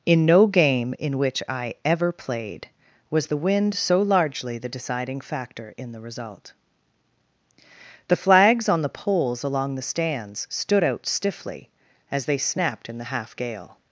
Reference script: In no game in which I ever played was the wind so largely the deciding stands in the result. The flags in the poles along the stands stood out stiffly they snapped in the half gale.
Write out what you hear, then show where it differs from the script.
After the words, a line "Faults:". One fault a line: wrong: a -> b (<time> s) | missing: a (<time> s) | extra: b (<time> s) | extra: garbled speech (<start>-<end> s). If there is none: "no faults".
In no game in which I ever played was the wind so largely the deciding factor in the result. The flags on the poles along the stands stood out stiffly as they snapped in the half gale.
Faults:
wrong: stands -> factor (5.2 s)
wrong: in -> on (8.7 s)
extra: as (12.1 s)